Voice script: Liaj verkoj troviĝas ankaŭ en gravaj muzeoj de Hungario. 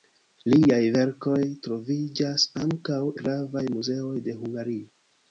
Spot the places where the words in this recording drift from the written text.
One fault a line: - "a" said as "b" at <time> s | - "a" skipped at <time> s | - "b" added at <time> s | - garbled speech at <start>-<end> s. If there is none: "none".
- "en" skipped at 3.0 s